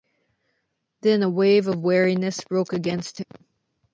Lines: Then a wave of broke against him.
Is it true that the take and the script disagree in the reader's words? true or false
true